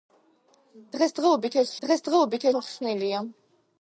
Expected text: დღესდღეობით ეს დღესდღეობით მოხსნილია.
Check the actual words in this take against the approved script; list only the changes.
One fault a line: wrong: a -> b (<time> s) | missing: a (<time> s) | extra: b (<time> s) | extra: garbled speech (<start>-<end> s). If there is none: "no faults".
no faults